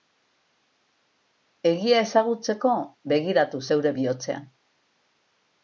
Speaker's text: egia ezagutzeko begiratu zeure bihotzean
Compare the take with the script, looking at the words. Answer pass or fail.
pass